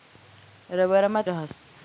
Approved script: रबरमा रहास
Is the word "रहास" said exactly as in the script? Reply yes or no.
yes